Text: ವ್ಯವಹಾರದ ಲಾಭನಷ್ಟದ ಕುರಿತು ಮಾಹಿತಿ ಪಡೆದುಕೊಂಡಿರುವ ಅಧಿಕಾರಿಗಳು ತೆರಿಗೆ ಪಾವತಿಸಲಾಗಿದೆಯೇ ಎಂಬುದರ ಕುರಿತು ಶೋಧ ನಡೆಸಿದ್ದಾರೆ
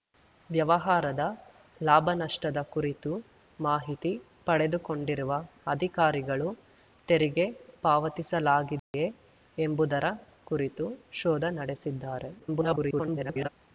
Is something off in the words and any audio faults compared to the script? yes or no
yes